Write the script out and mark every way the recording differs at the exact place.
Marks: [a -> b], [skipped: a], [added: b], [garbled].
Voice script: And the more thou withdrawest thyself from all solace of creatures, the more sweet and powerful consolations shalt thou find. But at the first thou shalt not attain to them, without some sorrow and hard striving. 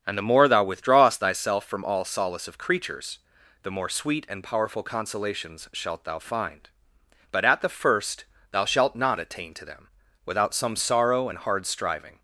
And the more thou withdrawest thyself from all solace of creatures, the more sweet and powerful consolations shalt thou find. But at the first thou shalt not attain to them, without some sorrow and hard striving.